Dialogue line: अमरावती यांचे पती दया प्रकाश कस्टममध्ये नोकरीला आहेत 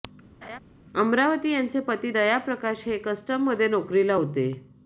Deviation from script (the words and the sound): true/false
true